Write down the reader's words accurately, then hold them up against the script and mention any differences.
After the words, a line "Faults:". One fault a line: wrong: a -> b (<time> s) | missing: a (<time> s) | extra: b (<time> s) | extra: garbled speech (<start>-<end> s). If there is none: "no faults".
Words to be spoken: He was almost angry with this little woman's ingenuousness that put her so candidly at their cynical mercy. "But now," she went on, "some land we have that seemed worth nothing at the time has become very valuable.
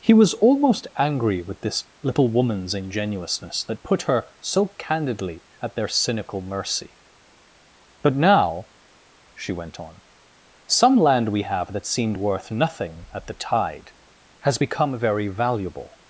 He was almost angry with this little woman's ingenuousness that put her so candidly at their cynical mercy. "But now," she went on, "some land we have that seemed worth nothing at the tide has become very valuable.
Faults:
wrong: time -> tide (13.3 s)